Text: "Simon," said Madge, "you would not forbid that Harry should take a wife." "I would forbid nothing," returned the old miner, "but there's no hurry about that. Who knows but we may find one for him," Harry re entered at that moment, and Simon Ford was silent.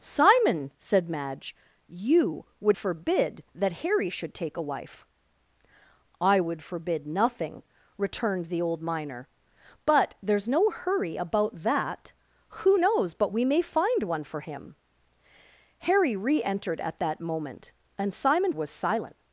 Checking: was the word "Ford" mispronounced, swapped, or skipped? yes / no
yes